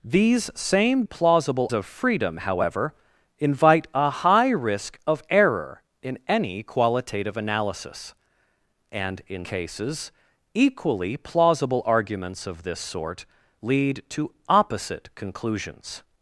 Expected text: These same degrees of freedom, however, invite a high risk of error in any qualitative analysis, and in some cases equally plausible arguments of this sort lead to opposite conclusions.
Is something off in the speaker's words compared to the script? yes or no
yes